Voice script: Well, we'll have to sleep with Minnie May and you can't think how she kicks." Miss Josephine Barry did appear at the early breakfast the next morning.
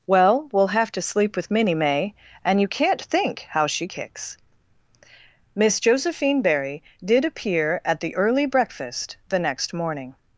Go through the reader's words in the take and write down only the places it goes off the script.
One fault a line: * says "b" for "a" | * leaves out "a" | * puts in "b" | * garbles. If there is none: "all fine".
all fine